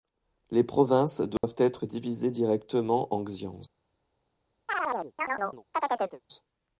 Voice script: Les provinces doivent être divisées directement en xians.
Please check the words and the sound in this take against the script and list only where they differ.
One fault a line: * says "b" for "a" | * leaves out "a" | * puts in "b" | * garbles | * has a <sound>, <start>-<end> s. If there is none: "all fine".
* has a dropout, 1.4-1.4 s
* has a chirp, 4.7-6.2 s